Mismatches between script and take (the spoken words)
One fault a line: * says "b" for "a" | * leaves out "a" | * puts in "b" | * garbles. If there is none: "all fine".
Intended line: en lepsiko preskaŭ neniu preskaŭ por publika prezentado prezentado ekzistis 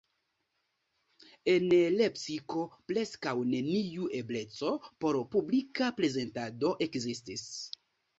* says "ebleco" for "preskaŭ"
* leaves out "prezentado"